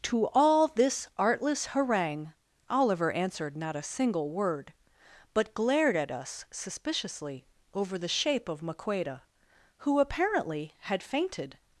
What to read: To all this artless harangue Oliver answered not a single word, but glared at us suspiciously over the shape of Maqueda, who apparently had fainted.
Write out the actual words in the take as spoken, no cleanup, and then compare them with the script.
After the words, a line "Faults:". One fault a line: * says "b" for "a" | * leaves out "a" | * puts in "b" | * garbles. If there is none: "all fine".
To all this artless harangue Oliver answered not a single word, but glared at us suspiciously over the shape of Maqueda, who apparently had fainted.
Faults:
all fine